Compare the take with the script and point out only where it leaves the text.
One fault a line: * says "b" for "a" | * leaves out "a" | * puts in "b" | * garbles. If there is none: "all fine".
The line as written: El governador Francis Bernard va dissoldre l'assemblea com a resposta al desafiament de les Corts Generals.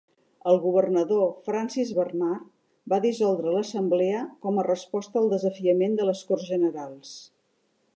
all fine